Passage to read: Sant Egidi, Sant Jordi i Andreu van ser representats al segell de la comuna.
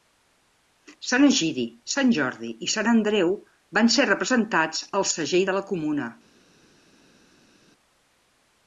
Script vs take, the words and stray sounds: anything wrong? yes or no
yes